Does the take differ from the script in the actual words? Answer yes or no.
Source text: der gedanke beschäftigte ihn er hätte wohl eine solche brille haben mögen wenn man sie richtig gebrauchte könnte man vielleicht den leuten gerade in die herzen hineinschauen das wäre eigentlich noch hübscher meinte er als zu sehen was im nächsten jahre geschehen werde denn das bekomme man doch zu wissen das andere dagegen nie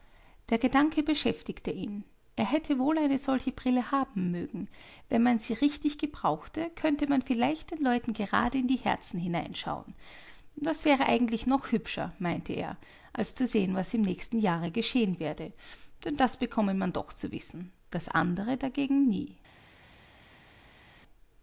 no